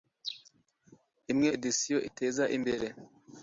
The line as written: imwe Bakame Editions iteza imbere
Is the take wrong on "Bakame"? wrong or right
wrong